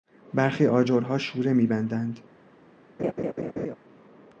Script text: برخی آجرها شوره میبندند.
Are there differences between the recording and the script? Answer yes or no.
no